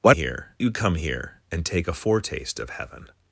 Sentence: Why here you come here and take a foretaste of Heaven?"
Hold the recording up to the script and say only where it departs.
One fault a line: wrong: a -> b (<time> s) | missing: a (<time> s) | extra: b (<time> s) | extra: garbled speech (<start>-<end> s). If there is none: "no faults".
no faults